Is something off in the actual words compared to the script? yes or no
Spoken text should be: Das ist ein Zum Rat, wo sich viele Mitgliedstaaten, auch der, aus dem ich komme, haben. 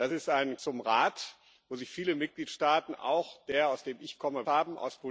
no